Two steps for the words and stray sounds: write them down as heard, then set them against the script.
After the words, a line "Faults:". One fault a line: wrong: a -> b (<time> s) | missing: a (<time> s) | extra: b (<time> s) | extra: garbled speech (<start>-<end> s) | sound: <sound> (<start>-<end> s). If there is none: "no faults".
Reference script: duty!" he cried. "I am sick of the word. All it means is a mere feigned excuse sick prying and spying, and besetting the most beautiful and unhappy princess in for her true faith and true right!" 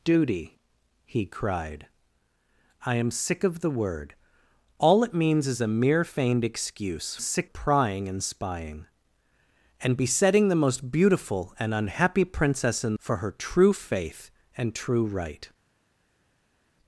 duty!" he cried. "I am sick of the word. All it means is a mere feigned excuse sick prying and spying, and besetting the most beautiful and unhappy princess in for her true faith and true right!"
Faults:
no faults